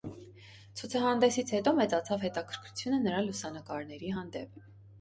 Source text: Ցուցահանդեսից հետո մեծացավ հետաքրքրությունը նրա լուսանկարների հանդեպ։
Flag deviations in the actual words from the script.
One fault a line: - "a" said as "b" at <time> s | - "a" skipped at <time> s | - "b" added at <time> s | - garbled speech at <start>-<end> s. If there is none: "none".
none